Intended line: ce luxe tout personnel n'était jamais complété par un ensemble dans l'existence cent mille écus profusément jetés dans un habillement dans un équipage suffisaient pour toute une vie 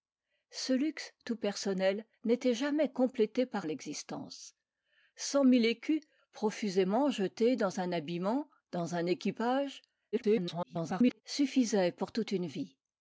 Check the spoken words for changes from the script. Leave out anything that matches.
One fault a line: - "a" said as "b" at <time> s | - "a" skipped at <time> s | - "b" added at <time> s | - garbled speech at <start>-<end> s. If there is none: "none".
- "un ensemble dans" skipped at 3.7 s
- garbled speech at 10.1-11.2 s